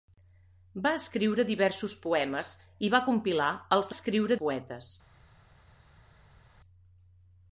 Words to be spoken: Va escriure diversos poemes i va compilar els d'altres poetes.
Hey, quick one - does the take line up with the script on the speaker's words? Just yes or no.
no